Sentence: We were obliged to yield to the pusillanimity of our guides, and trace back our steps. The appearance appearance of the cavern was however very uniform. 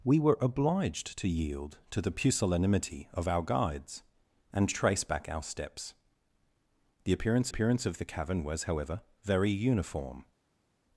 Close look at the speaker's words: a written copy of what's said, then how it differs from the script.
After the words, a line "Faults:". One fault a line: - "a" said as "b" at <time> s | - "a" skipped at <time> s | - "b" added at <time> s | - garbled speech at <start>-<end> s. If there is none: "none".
We were obliged to yield to the pusillanimity of our guides, and trace back our steps. The appearance appearance of the cavern was however very uniform.
Faults:
none